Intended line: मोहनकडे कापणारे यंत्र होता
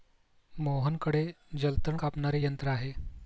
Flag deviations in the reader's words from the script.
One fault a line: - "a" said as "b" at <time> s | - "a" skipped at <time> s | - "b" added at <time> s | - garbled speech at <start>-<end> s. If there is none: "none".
- "जलतण" added at 1.6 s
- "होता" said as "आहे" at 2.7 s